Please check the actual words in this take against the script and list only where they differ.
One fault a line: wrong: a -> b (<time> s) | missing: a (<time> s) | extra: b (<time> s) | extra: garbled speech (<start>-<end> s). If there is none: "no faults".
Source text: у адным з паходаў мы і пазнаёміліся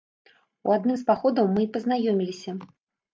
no faults